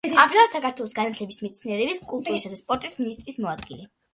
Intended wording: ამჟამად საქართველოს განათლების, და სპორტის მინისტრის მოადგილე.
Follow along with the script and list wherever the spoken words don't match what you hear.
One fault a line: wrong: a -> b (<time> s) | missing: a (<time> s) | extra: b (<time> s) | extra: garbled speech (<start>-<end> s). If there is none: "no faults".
extra: მეცნიერების კულტურისა (1.4 s)